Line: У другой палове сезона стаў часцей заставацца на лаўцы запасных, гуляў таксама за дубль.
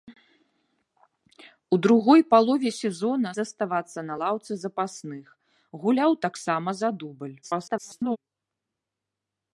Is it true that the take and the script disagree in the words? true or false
true